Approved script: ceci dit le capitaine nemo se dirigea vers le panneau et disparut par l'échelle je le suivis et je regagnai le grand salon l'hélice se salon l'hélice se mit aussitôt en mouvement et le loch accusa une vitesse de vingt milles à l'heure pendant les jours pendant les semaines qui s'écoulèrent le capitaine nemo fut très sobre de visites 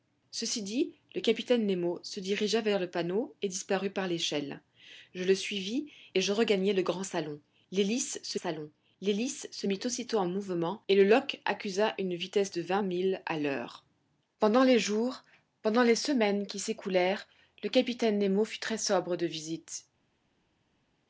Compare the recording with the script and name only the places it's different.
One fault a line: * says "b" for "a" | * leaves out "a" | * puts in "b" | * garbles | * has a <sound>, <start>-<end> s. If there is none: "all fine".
all fine